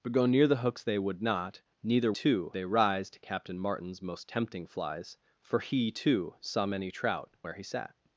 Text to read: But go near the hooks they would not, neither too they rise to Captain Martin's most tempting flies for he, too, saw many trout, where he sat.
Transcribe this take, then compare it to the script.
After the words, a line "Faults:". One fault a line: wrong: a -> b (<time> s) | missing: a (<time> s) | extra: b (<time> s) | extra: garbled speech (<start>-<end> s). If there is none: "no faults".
But go near the hooks they would not, neither too they rise to Captain Martin's most tempting flies for he, too, saw many trout, where he sat.
Faults:
no faults